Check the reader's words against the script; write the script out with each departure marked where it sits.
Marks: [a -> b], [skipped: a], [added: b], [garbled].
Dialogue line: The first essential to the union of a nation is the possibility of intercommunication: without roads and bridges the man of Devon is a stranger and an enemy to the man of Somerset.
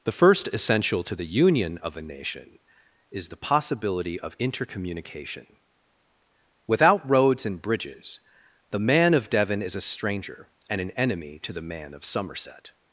The first essential to the union of a nation is the possibility of intercommunication: without roads and bridges the man of Devon is a stranger and an enemy to the man of Somerset.